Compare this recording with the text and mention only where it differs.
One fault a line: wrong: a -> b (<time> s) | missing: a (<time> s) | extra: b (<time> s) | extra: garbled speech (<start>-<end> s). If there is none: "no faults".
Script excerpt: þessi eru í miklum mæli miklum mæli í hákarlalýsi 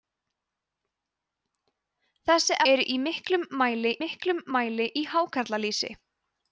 no faults